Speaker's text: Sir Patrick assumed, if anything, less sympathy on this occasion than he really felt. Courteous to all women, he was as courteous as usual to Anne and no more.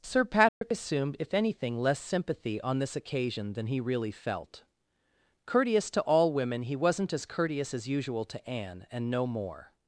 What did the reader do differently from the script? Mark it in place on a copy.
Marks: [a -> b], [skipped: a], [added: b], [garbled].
Sir Patrick assumed, if anything, less sympathy on this occasion than he really felt. Courteous to all women, he [was -> wasn't] as courteous as usual to Anne and no more.